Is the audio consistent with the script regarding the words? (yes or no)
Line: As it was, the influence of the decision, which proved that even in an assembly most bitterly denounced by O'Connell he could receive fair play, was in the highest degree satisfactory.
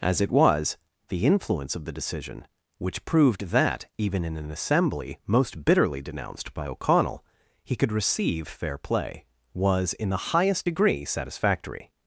yes